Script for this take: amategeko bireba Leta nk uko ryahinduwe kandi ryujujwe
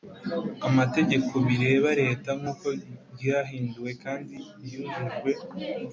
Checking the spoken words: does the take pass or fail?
pass